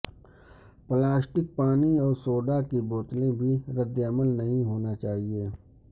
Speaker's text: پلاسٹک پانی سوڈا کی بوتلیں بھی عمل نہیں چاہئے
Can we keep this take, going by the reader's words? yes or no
no